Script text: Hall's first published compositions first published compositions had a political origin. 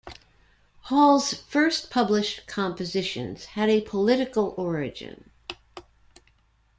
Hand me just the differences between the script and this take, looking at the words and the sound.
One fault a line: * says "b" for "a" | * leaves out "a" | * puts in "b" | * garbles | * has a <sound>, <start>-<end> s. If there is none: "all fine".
* leaves out "first published compositions"